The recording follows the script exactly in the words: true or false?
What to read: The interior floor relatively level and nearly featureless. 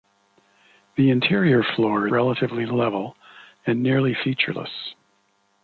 true